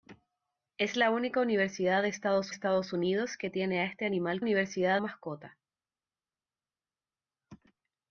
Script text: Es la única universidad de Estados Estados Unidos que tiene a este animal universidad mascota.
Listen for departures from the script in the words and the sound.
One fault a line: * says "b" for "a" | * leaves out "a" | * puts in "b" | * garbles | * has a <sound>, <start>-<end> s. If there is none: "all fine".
all fine